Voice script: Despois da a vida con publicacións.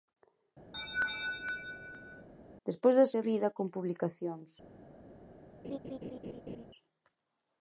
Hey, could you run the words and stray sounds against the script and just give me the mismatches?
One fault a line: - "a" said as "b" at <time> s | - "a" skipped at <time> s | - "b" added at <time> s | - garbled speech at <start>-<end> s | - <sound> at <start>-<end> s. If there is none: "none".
- laugh at 0.7-2.3 s
- laugh at 5.6-6.7 s